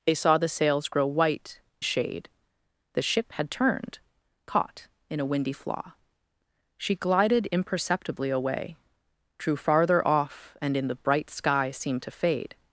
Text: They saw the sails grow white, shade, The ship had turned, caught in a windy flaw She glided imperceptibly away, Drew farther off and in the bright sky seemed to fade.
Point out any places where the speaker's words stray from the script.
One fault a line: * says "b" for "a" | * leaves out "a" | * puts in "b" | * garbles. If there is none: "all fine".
all fine